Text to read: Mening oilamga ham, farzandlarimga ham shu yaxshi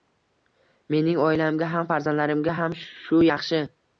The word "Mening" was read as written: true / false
true